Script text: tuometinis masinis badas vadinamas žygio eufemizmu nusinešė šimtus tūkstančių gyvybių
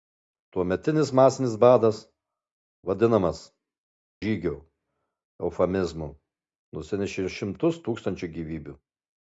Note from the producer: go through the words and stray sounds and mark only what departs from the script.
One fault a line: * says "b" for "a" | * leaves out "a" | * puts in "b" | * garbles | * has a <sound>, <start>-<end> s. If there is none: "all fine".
all fine